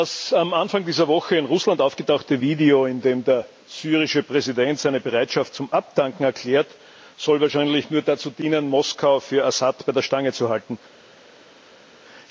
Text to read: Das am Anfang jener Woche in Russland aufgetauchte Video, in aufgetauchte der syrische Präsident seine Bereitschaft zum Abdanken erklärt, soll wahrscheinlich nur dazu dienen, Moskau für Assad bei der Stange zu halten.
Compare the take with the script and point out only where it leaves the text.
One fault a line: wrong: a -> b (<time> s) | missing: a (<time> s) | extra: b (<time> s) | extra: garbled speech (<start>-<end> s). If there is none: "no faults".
wrong: jener -> dieser (0.8 s)
wrong: aufgetauchte -> dem (3.0 s)